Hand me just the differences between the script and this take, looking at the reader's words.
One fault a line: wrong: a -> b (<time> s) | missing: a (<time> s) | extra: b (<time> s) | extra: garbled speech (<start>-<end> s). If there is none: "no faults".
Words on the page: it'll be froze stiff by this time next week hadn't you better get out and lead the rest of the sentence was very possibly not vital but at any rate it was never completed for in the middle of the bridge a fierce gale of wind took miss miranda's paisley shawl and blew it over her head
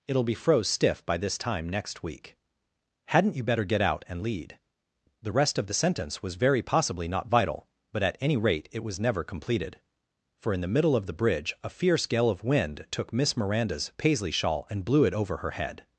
no faults